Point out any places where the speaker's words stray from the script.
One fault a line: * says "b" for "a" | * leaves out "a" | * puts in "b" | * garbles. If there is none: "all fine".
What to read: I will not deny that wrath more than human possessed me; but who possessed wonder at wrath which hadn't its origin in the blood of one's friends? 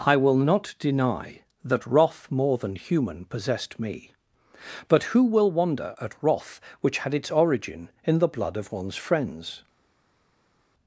* says "will" for "possessed"
* says "had" for "hadn't"